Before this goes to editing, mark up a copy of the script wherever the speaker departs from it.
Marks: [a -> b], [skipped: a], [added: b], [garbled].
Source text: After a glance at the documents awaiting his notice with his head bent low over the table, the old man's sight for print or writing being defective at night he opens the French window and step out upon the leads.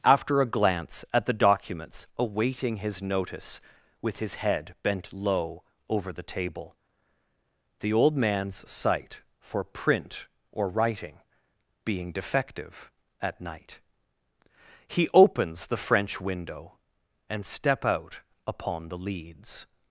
After a glance at the documents awaiting his notice with his head bent low over the table, the old man's sight for print or writing being defective at night he opens the French window and step out upon the leads.